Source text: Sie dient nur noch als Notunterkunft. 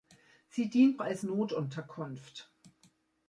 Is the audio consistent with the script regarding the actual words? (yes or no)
no